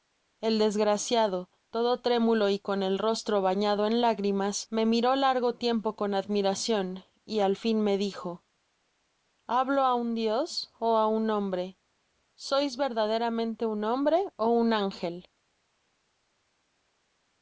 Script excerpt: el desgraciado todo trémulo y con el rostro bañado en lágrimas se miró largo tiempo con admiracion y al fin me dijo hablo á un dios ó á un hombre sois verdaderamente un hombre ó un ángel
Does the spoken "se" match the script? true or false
false